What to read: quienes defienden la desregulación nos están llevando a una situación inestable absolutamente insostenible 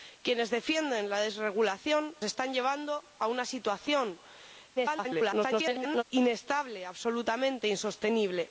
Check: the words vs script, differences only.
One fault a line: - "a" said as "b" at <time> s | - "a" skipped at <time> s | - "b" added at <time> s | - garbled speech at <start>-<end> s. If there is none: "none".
- "nos" skipped at 2.1 s
- garbled speech at 4.8-6.0 s